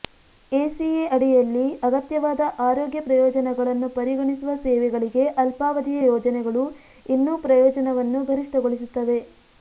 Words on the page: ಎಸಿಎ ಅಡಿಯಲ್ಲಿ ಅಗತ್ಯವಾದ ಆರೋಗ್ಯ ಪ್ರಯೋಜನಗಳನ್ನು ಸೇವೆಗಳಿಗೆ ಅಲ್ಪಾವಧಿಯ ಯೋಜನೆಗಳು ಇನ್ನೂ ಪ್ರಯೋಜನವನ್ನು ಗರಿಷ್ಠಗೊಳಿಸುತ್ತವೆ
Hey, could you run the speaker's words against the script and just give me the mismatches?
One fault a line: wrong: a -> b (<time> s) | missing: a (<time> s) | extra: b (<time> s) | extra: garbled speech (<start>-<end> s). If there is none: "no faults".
extra: ಪರಿಗಣಿಸುವ (3.9 s)